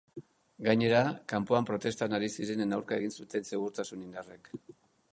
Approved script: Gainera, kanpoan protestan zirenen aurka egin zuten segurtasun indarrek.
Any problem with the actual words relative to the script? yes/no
yes